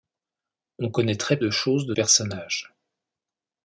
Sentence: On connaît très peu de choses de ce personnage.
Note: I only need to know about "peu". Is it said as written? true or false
false